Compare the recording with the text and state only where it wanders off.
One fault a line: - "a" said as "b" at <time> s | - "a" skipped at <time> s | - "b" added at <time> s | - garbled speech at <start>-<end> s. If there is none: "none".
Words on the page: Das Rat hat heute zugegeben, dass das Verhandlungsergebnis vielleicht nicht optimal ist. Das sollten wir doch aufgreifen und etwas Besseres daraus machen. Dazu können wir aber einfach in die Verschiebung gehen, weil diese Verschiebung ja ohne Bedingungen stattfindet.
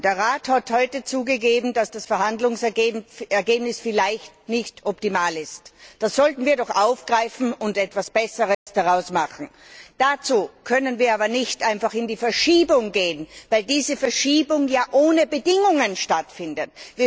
- "Das" said as "Der" at 0.0 s
- "nicht" added at 11.3 s